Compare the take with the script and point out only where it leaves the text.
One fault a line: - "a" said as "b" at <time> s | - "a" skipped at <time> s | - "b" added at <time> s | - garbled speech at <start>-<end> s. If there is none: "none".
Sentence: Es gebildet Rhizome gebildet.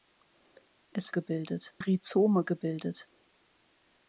none